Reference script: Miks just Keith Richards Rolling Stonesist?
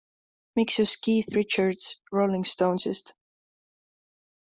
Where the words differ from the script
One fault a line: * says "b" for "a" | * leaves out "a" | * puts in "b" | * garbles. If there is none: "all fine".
all fine